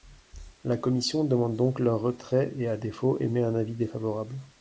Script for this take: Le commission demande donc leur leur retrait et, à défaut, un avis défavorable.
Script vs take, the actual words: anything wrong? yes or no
yes